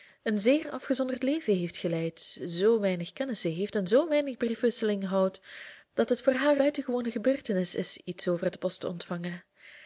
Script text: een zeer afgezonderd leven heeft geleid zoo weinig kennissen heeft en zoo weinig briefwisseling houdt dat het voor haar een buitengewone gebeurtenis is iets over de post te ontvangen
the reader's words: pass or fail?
fail